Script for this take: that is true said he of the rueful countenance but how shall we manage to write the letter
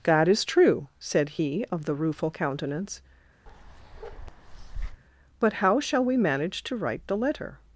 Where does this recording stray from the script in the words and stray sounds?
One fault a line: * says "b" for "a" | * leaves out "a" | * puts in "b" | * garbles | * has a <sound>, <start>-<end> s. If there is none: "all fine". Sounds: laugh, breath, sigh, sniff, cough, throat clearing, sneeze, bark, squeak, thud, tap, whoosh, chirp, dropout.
* has a bark, 3.5-5.0 s